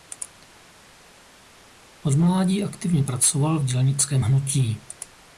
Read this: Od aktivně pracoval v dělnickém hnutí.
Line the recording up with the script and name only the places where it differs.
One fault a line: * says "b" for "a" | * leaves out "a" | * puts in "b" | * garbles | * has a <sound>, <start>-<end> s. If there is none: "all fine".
* puts in "mládí"